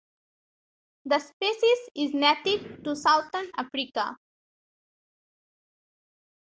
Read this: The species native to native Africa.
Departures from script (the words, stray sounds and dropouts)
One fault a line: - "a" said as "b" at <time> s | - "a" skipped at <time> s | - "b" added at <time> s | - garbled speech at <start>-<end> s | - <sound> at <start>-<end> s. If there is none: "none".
- "is" added at 1.9 s
- "native" said as "southern" at 2.9 s